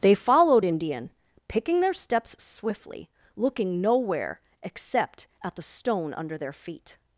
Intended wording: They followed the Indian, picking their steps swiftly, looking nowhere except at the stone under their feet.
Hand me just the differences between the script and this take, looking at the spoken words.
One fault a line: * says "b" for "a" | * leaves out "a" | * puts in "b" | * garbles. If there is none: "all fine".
* leaves out "the"